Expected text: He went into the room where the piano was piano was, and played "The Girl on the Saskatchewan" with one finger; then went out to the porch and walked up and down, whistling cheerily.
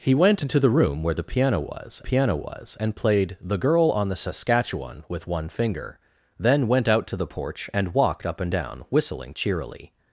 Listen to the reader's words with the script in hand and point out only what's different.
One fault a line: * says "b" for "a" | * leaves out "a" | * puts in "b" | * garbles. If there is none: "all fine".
all fine